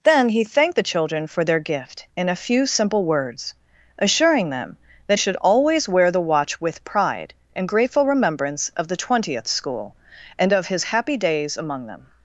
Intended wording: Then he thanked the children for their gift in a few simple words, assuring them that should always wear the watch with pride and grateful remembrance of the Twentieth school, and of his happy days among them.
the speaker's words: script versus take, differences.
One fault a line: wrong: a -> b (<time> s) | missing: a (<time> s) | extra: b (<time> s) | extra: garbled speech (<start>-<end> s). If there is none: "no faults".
no faults